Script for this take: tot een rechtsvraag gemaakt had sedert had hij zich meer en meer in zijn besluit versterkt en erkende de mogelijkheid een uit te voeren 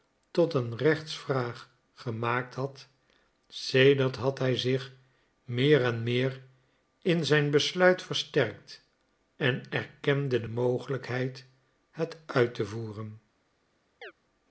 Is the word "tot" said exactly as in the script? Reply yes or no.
yes